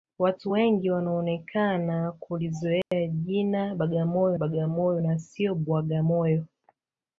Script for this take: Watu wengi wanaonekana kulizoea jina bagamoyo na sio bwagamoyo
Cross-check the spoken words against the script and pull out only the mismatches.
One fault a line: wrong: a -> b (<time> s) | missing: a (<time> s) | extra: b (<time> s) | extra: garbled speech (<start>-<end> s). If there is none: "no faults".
extra: bagamoyo (4.3 s)